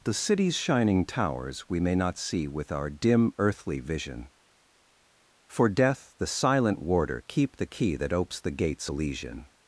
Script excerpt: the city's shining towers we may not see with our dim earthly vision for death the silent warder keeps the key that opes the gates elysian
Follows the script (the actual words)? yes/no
no